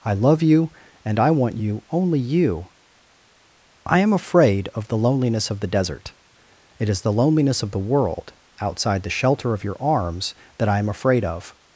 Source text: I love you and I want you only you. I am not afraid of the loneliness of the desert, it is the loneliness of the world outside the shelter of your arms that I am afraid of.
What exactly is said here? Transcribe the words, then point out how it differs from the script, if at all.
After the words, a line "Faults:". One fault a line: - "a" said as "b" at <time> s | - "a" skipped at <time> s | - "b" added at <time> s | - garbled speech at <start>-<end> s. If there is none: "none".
I love you and I want you only you. I am afraid of the loneliness of the desert, it is the loneliness of the world outside the shelter of your arms that I am afraid of.
Faults:
- "not" skipped at 4.1 s